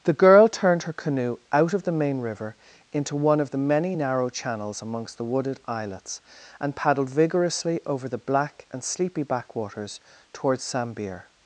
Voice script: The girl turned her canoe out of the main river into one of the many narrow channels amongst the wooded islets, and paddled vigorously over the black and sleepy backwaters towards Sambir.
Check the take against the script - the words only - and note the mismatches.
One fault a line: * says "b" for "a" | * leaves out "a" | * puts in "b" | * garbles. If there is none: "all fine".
all fine